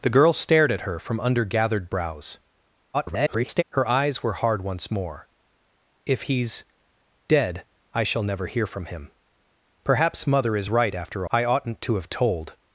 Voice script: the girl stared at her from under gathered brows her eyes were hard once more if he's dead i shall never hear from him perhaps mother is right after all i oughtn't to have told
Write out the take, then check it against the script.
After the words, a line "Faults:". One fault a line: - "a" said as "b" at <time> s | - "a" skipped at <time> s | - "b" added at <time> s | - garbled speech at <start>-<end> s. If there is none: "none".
the girl stared at her from under gathered brows [garbled] her eyes were hard once more if he's dead i shall never hear from him perhaps mother is right after i oughtn't to have told
Faults:
- garbled speech at 2.9-3.6 s
- "all" skipped at 11.2 s